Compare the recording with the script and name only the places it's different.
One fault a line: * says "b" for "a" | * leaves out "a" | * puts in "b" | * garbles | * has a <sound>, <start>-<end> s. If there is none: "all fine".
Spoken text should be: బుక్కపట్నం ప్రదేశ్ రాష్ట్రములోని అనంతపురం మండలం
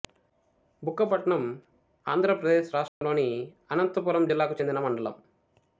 * puts in "ఆంధ్ర"
* has a dropout, 2.9-3.0 s
* puts in "జిల్లాకు చెందిన"